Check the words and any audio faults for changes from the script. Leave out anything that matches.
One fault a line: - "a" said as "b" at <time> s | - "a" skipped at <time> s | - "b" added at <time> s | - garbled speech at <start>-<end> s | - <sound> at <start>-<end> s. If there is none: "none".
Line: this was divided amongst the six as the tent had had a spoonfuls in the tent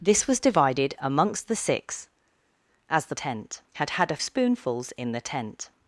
none